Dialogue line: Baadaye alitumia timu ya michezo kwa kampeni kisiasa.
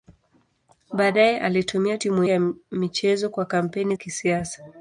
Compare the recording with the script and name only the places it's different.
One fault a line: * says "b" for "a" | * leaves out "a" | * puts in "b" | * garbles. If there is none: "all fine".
all fine